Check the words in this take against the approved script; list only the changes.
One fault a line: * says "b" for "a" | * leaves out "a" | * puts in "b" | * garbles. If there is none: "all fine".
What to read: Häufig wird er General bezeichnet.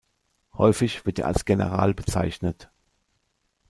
* puts in "als"